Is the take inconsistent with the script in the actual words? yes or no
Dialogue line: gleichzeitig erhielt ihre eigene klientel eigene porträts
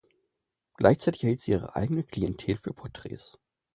yes